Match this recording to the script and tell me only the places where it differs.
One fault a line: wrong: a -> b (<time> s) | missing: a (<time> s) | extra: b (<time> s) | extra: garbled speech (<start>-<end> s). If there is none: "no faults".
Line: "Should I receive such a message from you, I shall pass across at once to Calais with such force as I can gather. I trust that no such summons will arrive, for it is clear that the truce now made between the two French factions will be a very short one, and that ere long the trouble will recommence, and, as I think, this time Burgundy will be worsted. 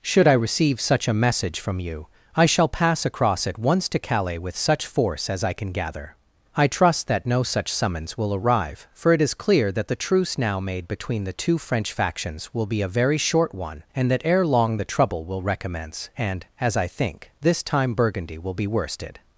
no faults